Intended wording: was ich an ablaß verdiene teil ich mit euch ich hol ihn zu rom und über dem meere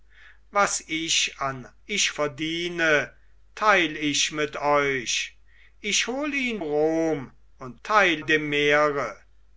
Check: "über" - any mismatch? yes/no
yes